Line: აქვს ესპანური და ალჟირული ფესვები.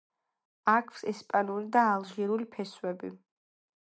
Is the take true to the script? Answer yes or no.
yes